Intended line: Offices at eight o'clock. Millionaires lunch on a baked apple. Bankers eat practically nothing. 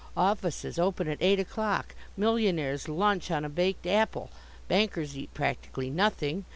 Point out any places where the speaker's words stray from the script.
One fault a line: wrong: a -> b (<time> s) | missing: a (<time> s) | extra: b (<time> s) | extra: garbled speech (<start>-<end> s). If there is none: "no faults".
extra: open (0.8 s)